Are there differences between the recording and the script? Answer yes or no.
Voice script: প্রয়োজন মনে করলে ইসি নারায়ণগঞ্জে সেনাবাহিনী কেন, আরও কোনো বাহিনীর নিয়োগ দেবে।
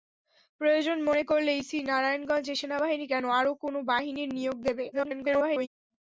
yes